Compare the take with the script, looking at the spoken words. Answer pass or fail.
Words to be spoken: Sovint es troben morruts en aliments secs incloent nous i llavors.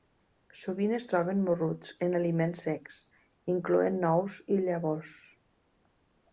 pass